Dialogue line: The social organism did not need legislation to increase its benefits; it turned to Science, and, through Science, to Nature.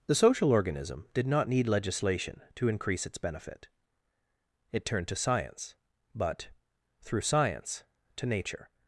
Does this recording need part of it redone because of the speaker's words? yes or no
yes